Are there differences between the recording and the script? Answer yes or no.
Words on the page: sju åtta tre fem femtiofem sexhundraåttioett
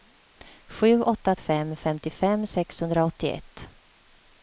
yes